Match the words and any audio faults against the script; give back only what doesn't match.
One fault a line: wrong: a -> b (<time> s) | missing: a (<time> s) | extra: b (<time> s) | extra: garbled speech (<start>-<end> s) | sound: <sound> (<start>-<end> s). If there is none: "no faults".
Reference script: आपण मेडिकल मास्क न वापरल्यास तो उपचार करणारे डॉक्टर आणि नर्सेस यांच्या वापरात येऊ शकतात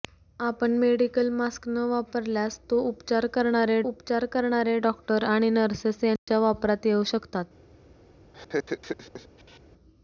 extra: उपचार करणारे (3.8 s)
sound: dropout (6.2-6.3 s)
sound: laugh (8.3-9.6 s)